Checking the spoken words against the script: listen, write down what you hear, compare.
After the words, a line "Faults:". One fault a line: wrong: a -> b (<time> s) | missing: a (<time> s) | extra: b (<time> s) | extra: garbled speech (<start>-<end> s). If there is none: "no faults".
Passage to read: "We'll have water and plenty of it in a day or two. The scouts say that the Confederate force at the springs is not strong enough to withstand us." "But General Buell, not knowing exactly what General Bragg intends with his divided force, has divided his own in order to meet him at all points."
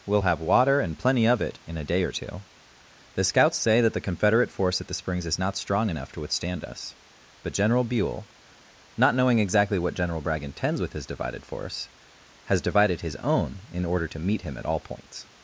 "We'll have water and plenty of it in a day or two. The scouts say that the Confederate force at the springs is not strong enough to withstand us." "But General Buell, not knowing exactly what General Bragg intends with his divided force, has divided his own in order to meet him at all points."
Faults:
no faults